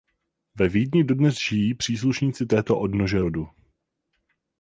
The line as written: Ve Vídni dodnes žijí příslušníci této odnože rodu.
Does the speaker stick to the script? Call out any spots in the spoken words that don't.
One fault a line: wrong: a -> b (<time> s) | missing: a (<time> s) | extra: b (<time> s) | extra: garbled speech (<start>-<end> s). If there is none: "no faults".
no faults